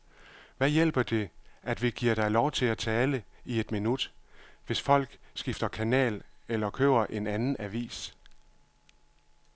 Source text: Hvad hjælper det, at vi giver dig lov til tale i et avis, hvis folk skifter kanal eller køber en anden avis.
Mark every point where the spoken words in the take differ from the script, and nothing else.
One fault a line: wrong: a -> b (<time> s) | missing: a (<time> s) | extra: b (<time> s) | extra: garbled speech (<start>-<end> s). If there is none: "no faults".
extra: at (2.6 s)
wrong: avis -> minut (3.7 s)